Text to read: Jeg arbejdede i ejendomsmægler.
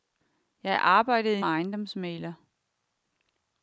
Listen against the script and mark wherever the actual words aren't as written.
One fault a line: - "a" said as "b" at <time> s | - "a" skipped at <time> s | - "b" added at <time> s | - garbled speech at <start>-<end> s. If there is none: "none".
none